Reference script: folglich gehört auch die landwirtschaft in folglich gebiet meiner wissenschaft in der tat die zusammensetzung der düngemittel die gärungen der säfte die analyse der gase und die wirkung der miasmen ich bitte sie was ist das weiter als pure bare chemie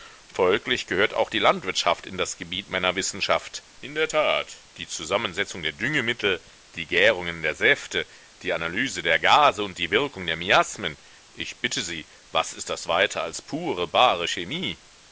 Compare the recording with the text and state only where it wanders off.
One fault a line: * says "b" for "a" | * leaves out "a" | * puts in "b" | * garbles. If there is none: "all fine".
* says "das" for "folglich"